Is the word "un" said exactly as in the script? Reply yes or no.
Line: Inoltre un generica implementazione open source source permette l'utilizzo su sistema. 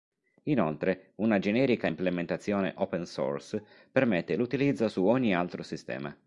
no